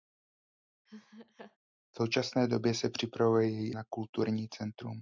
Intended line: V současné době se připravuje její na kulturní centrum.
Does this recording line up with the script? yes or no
yes